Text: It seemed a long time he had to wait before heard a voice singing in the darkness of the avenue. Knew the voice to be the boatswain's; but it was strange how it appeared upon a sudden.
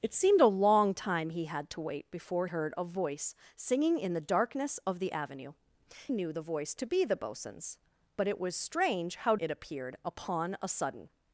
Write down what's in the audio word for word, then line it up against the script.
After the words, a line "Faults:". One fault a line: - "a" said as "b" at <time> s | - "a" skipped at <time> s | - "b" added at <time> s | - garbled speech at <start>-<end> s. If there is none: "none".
It seemed a long time he had to wait before heard a voice singing in the darkness of the avenue. Knew the voice to be the boatswain's; but it was strange how it appeared upon a sudden.
Faults:
none